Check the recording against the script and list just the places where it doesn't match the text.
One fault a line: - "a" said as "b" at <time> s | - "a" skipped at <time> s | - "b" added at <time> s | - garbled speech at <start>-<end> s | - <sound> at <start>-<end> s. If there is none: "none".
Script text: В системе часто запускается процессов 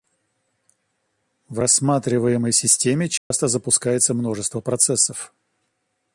- "рассматриваемой" added at 1.6 s
- dropout at 3.2-3.3 s
- "множество" added at 4.1 s